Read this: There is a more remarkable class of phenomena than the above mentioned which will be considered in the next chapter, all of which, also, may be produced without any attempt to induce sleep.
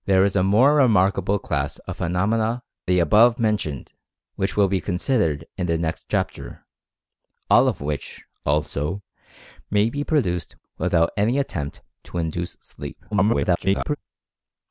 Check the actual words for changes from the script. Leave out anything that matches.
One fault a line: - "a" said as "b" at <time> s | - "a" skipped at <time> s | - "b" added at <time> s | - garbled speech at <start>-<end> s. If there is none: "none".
- "than" skipped at 2.6 s
- garbled speech at 13.1-14.0 s